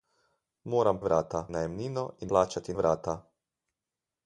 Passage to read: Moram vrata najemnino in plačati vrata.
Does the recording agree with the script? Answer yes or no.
yes